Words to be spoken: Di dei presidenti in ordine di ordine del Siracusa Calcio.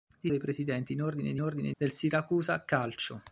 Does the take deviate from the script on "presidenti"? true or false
false